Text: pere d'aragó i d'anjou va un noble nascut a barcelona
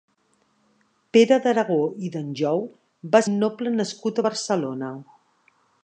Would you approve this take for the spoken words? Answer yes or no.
yes